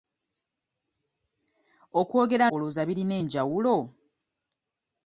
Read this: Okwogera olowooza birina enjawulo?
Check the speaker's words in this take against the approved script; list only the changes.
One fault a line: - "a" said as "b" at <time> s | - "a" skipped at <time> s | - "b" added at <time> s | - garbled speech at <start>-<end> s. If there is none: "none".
none